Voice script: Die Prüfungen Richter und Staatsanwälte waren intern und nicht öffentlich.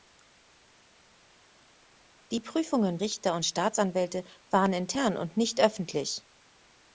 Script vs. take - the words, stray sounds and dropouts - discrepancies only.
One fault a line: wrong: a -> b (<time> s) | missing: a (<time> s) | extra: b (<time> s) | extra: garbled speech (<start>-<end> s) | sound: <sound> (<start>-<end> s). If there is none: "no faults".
no faults